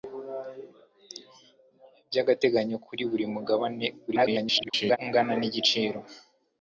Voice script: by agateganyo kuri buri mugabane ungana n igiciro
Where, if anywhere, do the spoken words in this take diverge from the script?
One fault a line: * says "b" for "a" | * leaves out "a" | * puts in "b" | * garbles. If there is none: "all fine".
* garbles